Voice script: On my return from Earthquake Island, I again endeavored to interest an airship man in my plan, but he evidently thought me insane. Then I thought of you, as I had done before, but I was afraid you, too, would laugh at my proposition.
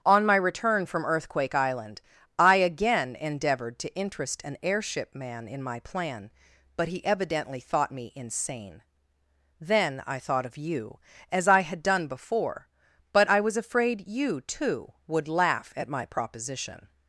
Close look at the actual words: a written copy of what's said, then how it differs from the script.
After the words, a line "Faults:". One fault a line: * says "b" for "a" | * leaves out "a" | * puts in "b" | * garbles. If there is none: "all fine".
On my return from Earthquake Island, I again endeavored to interest an airship man in my plan, but he evidently thought me insane. Then I thought of you, as I had done before, but I was afraid you, too, would laugh at my proposition.
Faults:
all fine